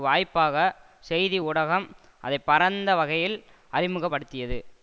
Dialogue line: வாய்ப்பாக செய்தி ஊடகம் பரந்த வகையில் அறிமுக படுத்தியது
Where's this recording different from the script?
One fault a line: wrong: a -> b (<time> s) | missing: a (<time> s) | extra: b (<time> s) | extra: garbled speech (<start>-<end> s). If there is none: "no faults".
extra: அதை (2.2 s)